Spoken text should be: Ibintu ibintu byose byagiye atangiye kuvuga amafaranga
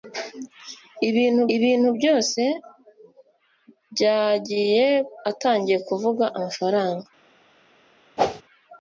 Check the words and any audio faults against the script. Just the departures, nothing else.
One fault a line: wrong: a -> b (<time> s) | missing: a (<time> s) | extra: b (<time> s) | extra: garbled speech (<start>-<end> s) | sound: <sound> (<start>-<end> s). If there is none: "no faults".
sound: whoosh (8.2-8.4 s)